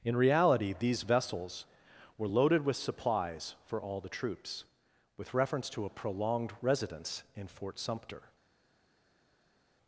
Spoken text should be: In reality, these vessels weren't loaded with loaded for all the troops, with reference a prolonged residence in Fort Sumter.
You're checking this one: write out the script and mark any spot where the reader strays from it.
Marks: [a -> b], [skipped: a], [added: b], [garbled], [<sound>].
In reality, these vessels [weren't -> were] loaded with [loaded -> supplies] for all the troops, with reference [added: to] a prolonged residence in Fort Sumter.